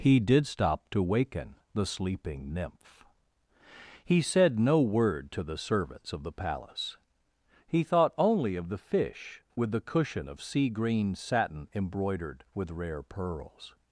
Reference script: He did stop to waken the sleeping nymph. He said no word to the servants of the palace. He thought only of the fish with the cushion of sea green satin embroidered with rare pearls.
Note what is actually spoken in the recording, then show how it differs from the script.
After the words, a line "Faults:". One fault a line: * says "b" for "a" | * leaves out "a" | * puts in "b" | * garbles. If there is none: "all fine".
He did stop to waken the sleeping nymph. He said no word to the servants of the palace. He thought only of the fish with the cushion of sea green satin embroidered with rare pearls.
Faults:
all fine